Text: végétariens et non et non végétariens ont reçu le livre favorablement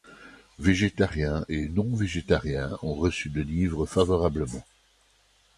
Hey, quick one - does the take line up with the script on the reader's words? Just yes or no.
no